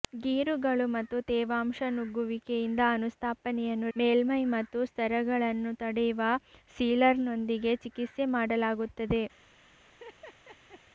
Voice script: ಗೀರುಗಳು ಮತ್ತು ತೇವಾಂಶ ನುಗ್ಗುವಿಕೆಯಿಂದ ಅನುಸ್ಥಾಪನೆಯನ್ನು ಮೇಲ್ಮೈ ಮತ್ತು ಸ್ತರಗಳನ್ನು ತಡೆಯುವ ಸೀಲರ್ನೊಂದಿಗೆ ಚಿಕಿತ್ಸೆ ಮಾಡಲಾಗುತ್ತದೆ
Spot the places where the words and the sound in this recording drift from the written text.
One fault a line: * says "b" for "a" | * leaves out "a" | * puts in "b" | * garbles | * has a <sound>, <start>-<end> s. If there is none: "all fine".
* has a laugh, 9.9-10.8 s